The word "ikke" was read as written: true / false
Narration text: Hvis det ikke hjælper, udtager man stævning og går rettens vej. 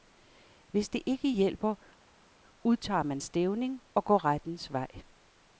true